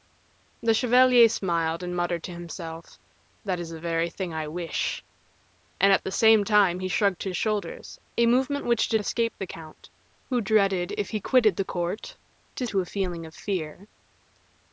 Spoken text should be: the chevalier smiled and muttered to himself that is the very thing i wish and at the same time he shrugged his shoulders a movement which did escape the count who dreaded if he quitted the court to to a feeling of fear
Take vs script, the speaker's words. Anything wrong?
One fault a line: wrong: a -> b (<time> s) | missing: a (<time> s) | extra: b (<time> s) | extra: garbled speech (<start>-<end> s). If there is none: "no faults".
no faults